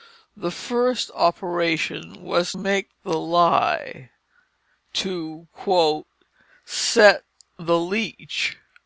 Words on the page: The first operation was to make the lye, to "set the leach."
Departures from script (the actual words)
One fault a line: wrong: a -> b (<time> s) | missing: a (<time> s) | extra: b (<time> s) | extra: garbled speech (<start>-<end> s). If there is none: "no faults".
missing: to (2.5 s)